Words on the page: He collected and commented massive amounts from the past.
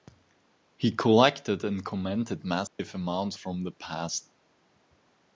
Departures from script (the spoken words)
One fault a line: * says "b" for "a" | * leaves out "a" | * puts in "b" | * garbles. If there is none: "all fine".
all fine